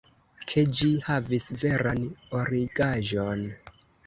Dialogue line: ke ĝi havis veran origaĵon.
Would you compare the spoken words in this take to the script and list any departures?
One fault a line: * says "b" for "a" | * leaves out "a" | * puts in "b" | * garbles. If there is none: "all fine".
all fine